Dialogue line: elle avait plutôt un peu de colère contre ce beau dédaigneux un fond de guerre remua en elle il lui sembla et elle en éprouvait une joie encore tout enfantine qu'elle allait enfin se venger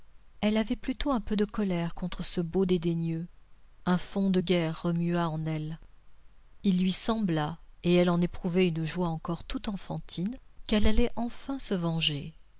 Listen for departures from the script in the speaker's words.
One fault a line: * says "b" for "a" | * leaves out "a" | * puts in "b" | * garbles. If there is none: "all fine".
all fine